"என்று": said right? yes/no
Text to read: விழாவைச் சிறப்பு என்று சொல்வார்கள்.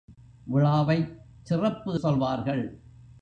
no